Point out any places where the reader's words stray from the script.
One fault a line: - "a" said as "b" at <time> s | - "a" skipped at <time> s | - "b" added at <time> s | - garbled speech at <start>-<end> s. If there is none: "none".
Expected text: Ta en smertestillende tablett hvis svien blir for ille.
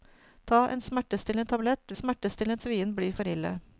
- "hvis" said as "smertestillende" at 1.9 s